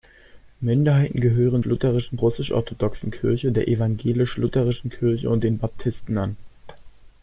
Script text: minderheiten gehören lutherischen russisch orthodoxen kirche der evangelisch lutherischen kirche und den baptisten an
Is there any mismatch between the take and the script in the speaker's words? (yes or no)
no